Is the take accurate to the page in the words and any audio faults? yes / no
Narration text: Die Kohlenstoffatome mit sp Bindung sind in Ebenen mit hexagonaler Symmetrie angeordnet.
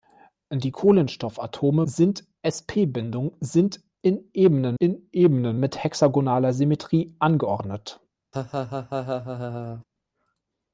no